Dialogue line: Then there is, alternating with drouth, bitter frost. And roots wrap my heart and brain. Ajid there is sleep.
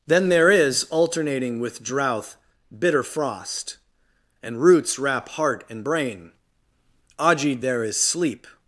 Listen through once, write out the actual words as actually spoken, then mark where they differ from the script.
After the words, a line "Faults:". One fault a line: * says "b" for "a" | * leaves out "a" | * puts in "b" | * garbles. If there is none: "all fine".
Then there is, alternating with drouth, bitter frost. And roots wrap heart and brain. Ajid there is sleep.
Faults:
* leaves out "my"